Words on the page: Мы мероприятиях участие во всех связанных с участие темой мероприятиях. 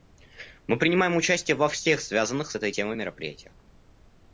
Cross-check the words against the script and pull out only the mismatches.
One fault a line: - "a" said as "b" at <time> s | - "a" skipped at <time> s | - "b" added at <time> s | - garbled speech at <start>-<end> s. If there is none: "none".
- "мероприятиях" said as "принимаем" at 0.8 s
- "участие" said as "этой" at 2.5 s